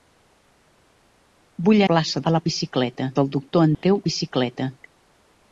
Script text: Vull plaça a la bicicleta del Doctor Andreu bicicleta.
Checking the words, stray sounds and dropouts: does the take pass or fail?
fail